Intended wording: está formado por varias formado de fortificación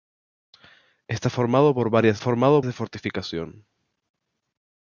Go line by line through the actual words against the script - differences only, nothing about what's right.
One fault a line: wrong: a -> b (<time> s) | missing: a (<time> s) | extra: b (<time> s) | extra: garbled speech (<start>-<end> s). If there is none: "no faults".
no faults